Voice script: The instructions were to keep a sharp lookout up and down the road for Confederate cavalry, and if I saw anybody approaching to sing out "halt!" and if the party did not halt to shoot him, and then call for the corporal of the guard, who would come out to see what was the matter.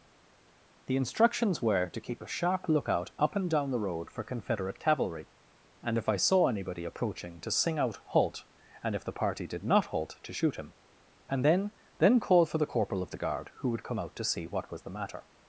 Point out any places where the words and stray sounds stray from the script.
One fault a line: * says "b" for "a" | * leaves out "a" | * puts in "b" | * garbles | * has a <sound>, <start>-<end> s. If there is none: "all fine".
* puts in "then"